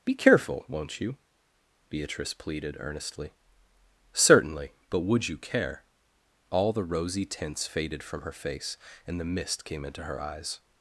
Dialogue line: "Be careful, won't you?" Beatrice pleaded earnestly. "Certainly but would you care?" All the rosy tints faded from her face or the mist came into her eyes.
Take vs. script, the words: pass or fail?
fail